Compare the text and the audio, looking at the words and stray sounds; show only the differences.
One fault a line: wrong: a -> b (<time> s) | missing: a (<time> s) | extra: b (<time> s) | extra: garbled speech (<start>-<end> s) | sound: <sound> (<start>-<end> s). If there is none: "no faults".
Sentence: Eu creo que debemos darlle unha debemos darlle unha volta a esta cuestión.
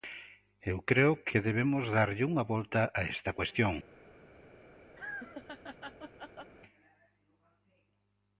missing: debemos darlle unha (2.4 s)
sound: laugh (5.0-6.5 s)